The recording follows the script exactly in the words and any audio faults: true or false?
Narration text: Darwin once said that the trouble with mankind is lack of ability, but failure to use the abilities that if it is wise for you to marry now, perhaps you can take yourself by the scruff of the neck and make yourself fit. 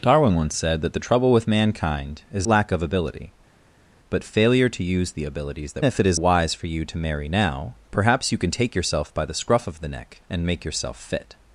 true